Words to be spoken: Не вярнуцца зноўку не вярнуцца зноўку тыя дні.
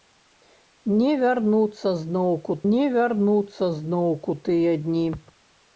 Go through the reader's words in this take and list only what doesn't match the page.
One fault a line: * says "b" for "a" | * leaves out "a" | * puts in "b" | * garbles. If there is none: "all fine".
all fine